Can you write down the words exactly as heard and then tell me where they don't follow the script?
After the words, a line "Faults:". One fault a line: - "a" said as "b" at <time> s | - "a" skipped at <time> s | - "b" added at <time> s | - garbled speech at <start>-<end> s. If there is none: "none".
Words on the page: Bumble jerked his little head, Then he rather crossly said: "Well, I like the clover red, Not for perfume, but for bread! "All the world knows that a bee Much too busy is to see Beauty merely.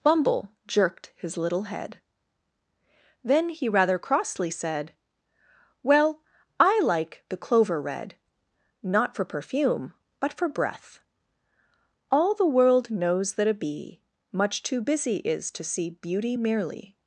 Bumble jerked his little head, Then he rather crossly said: "Well, I like the clover red, Not for perfume, but for breath! "All the world knows that a bee Much too busy is to see Beauty merely.
Faults:
- "bread" said as "breath" at 10.5 s